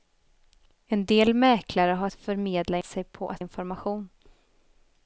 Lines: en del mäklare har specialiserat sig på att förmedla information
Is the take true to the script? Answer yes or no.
no